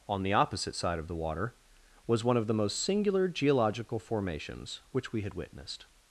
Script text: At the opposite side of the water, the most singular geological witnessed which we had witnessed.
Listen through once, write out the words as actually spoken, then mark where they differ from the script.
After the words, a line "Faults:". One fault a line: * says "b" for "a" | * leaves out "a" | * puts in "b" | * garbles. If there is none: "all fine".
On the opposite side of the water, was one of the most singular geological formations which we had witnessed.
Faults:
* says "On" for "At"
* puts in "was one of"
* says "formations" for "witnessed"